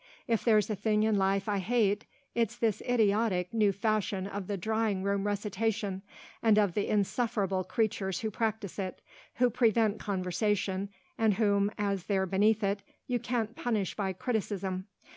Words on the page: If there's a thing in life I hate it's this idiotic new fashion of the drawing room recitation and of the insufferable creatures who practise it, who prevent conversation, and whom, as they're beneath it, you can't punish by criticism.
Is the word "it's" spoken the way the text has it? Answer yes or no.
yes